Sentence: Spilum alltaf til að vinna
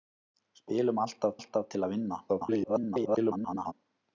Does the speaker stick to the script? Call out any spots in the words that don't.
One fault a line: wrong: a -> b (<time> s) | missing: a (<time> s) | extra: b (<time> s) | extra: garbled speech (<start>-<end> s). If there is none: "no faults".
extra: alltaf (1.4 s)
extra: garbled speech (2.3-3.7 s)